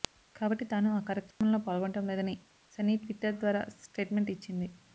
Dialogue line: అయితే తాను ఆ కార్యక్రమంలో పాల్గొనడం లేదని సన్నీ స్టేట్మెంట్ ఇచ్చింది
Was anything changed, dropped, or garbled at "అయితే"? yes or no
yes